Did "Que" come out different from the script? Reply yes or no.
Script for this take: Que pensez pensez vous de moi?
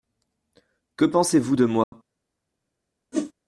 no